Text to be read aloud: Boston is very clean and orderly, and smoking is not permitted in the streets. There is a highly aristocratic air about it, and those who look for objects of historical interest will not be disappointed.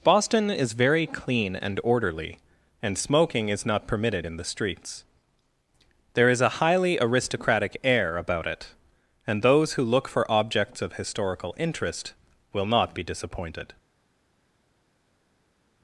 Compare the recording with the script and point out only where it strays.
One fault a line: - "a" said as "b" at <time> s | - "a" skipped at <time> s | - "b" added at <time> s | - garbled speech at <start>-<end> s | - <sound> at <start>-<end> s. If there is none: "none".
none